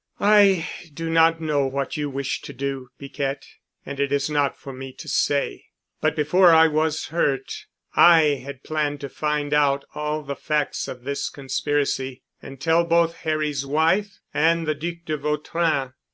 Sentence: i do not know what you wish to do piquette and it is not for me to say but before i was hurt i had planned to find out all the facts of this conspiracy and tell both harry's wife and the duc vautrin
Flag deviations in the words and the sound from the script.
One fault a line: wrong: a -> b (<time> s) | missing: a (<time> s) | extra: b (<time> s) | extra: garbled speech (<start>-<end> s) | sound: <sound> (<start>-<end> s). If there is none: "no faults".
extra: de (15.0 s)